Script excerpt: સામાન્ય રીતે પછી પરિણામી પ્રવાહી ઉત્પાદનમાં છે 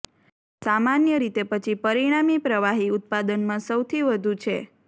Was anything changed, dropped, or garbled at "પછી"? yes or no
no